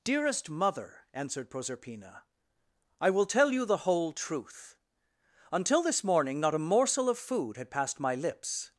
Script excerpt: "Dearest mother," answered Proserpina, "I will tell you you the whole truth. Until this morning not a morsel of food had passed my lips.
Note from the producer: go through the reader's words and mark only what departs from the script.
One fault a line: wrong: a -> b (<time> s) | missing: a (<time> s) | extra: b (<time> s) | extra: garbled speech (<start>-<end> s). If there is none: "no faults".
missing: you (3.6 s)